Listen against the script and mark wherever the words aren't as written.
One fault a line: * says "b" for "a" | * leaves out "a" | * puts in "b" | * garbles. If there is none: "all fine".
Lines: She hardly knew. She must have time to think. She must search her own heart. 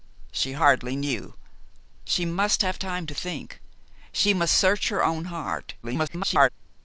* garbles